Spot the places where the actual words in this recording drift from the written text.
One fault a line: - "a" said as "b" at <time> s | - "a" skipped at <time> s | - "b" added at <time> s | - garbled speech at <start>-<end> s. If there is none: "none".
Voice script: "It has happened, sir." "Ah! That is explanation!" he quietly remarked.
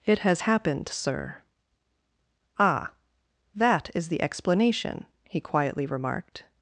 - "the" added at 4.1 s